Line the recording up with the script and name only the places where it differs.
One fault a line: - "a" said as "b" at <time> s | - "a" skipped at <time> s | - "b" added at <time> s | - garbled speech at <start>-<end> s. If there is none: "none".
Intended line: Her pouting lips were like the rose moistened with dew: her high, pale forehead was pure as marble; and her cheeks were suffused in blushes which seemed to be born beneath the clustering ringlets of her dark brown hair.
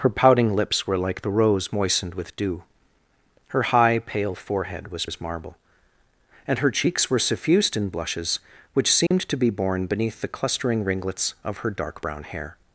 - "pure" skipped at 5.0 s